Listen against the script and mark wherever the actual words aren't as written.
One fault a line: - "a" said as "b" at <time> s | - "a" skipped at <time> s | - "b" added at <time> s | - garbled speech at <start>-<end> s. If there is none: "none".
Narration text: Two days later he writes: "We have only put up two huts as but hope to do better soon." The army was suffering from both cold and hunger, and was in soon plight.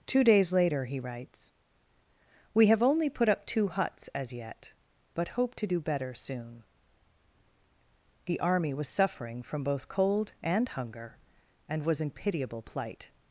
- "yet" added at 4.3 s
- "soon" said as "pitiable" at 12.1 s